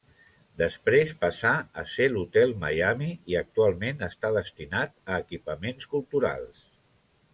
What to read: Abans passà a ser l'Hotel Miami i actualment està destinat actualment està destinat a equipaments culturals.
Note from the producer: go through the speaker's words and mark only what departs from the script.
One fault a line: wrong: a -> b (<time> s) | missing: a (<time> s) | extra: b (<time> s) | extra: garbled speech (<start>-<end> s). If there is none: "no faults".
wrong: Abans -> Després (0.6 s)
missing: actualment està destinat (5.0 s)